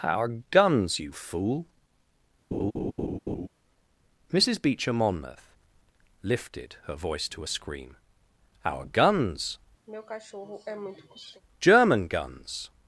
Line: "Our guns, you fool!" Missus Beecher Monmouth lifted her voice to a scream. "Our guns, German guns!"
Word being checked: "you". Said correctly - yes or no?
yes